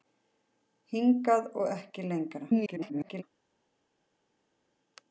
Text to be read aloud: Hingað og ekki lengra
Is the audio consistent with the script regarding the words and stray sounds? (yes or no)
no